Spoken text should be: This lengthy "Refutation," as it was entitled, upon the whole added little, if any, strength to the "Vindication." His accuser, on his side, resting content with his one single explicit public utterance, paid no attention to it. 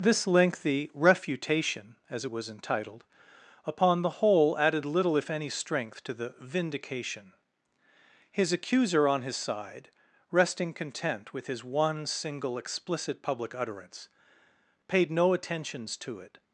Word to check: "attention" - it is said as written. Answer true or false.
false